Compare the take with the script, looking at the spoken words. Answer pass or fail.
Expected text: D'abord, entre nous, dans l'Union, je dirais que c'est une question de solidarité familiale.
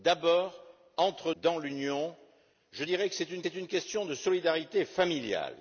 fail